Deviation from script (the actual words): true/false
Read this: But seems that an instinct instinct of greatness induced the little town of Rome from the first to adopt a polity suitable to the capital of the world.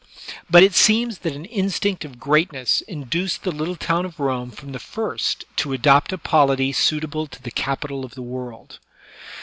true